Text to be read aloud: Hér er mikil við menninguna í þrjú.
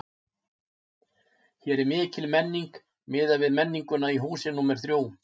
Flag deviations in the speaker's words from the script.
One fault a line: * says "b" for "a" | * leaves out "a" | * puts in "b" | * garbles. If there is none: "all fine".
* puts in "menning miðað"
* puts in "húsi númer"